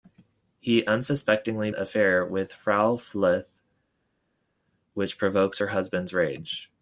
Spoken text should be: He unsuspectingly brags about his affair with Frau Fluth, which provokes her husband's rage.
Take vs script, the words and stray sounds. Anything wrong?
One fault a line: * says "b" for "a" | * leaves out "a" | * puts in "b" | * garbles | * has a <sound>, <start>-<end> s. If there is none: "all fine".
* leaves out "brags about his"